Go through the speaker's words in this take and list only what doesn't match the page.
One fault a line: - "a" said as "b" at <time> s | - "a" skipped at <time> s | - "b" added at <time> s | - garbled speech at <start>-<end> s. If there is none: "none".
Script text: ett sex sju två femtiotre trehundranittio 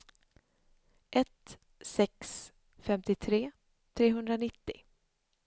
- "sju två" skipped at 2.5 s